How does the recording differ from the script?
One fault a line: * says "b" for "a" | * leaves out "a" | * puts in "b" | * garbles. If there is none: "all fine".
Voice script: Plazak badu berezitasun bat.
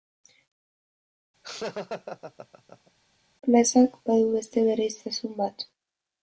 * puts in "beste"